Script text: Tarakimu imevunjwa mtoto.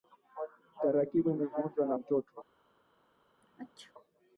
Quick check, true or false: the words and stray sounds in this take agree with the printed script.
false